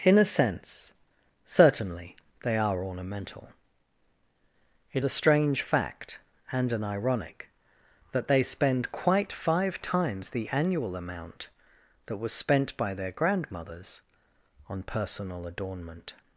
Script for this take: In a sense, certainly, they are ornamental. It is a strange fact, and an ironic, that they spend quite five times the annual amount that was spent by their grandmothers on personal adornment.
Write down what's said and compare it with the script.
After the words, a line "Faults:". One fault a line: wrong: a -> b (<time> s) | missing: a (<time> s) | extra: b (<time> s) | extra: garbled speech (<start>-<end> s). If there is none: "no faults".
In a sense, certainly, they are ornamental. It a strange fact, and an ironic, that they spend quite five times the annual amount that was spent by their grandmothers on personal adornment.
Faults:
missing: is (5.0 s)